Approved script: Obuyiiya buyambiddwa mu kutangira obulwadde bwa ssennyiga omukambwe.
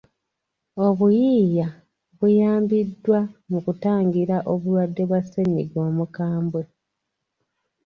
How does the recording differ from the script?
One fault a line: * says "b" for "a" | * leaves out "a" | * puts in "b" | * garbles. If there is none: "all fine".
all fine